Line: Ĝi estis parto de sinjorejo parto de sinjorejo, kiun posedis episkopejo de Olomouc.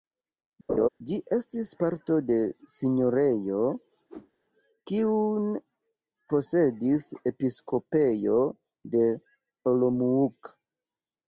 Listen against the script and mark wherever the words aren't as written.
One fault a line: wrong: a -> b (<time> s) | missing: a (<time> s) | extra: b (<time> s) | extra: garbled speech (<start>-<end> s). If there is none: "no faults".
missing: parto de sinjorejo (3.6 s)